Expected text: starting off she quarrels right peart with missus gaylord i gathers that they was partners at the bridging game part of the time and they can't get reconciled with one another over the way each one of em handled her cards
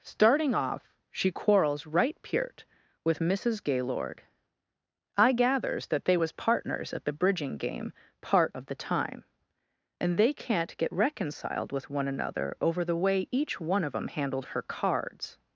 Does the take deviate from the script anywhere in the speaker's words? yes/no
no